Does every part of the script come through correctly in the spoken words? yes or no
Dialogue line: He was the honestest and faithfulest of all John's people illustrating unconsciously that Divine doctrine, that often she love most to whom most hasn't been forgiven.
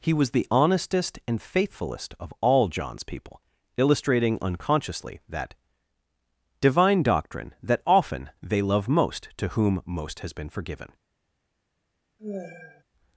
no